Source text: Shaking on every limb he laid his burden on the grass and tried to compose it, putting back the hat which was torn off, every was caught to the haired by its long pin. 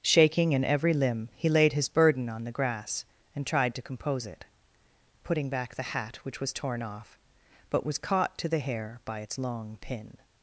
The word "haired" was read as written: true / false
false